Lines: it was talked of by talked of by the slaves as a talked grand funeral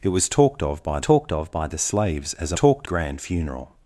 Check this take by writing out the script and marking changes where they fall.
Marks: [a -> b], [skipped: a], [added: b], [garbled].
it was talked of by talked of by the slaves as a talked grand funeral